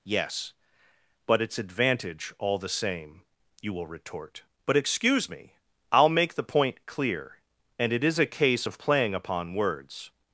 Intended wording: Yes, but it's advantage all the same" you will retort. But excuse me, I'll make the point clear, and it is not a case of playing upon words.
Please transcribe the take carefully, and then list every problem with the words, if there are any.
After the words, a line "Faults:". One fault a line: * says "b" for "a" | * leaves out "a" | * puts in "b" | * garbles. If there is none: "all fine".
Yes, but it's advantage all the same" you will retort. But excuse me, I'll make the point clear, and it is a case of playing upon words.
Faults:
* leaves out "not"